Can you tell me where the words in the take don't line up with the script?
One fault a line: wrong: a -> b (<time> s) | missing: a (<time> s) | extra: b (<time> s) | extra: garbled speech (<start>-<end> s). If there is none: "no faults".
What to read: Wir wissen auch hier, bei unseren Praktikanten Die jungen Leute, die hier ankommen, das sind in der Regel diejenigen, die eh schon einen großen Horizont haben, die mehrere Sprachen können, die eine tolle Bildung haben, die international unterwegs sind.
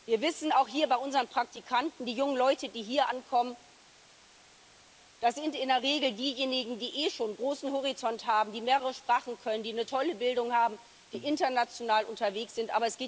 no faults